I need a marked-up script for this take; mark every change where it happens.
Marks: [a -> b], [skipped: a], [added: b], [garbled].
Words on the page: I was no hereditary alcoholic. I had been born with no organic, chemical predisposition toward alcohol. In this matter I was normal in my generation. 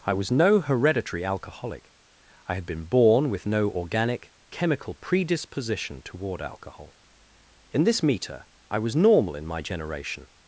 I was no hereditary alcoholic. I had been born with no organic, chemical predisposition toward alcohol. In this [matter -> meter] I was normal in my generation.